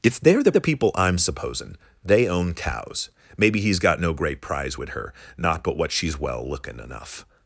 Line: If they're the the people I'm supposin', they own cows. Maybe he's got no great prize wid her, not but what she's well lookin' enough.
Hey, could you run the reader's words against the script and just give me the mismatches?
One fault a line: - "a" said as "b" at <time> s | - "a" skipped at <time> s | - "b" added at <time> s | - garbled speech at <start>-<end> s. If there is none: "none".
none